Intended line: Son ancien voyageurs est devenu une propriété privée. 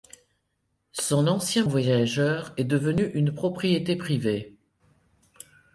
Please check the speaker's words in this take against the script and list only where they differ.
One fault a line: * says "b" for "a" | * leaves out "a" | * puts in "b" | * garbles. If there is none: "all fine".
all fine